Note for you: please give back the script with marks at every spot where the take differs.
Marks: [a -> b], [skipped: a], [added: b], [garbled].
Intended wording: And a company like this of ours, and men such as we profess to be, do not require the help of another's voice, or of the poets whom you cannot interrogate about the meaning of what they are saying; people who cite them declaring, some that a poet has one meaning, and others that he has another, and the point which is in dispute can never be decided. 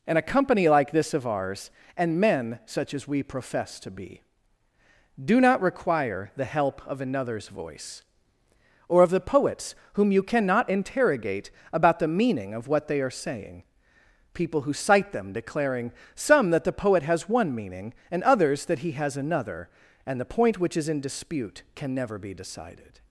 And a company like this of ours, and men such as we profess to be, do not require the help of another's voice, or of the poets whom you cannot interrogate about the meaning of what they are saying; people who cite them declaring, some that [a -> the] poet has one meaning, and others that he has another, and the point which is in dispute can never be decided.